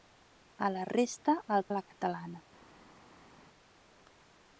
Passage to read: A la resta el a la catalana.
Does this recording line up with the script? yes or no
yes